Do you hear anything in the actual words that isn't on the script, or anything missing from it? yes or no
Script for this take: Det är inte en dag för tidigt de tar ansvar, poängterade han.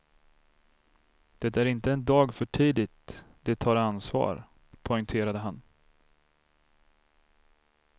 no